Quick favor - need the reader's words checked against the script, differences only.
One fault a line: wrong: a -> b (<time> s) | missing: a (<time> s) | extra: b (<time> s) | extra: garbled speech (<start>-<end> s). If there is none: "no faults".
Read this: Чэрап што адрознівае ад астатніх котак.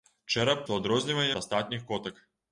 no faults